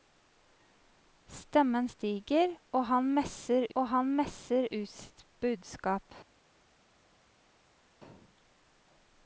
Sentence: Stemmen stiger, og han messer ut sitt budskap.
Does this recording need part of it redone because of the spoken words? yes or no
yes